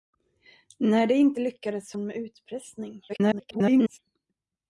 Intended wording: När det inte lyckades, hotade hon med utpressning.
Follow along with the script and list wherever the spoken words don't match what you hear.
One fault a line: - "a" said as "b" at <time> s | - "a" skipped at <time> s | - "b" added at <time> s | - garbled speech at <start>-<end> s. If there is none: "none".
- "hotade" skipped at 1.9 s
- garbled speech at 3.1-4.0 s